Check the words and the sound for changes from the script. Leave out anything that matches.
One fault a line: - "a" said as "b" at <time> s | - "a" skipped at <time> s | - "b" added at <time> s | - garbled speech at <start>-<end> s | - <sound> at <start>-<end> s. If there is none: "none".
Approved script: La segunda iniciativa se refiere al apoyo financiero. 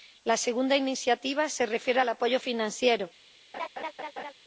- laugh at 3.5-4.3 s